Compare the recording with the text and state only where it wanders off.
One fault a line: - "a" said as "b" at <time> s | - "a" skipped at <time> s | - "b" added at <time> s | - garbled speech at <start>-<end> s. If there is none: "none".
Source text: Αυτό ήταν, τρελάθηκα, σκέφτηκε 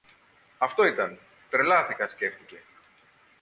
none